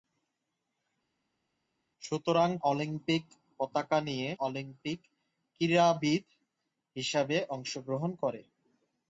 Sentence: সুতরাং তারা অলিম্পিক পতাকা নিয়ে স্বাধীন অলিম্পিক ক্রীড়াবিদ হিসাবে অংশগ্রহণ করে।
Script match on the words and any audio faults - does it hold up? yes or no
no